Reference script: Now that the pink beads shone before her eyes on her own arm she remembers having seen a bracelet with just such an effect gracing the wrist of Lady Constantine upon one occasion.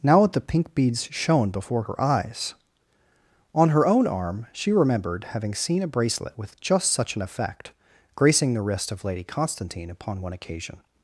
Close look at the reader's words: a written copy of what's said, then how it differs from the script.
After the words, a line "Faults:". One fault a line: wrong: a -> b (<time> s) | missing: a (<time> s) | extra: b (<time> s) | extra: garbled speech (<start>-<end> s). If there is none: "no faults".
Now that the pink beads shone before her eyes on her own arm she remembered having seen a bracelet with just such an effect gracing the wrist of Lady Constantine upon one occasion.
Faults:
wrong: remembers -> remembered (4.7 s)